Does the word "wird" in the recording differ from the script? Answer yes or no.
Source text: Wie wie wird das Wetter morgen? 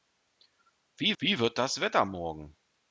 no